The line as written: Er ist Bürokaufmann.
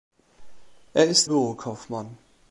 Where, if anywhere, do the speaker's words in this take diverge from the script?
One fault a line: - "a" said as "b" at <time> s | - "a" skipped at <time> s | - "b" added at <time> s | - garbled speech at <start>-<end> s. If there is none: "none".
none